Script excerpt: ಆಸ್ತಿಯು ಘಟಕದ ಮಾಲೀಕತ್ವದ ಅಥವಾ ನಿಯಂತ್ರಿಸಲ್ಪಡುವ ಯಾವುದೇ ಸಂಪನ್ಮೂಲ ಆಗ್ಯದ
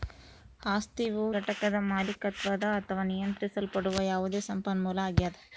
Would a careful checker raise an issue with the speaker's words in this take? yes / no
no